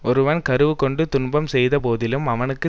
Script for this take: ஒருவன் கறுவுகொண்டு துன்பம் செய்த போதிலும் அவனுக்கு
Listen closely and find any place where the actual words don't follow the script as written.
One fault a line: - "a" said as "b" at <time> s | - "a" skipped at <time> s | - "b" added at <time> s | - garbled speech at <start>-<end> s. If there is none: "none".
none